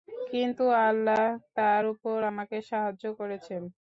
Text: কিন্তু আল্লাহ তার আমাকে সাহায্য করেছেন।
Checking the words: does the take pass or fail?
fail